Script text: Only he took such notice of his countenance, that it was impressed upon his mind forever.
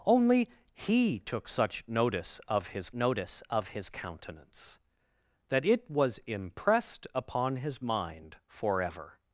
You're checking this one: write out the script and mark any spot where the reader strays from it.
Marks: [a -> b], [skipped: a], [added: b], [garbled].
Only he took such notice of his [added: notice of his] countenance, that it was impressed upon his mind forever.